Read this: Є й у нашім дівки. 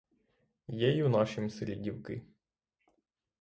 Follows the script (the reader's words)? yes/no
no